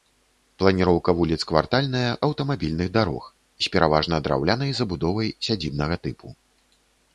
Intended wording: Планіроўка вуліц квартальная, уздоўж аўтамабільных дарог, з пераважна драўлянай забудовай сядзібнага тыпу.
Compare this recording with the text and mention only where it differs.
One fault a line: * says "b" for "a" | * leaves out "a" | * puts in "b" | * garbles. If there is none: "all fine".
* leaves out "уздоўж"